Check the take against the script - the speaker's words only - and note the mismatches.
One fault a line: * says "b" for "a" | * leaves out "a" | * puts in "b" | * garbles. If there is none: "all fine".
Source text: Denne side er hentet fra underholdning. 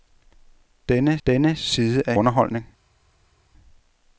* puts in "denne"
* leaves out "hentet fra"